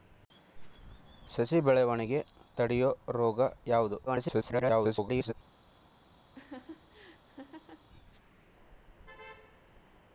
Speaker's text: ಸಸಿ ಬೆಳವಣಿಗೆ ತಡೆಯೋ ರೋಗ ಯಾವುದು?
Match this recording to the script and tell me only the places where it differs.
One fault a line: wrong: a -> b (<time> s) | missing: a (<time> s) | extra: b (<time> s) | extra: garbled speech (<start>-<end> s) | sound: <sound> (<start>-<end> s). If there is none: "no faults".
extra: garbled speech (4.1-5.3 s)
sound: laugh (6.3-7.9 s)